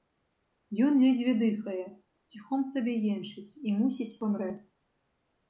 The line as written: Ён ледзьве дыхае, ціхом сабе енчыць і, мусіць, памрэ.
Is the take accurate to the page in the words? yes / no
yes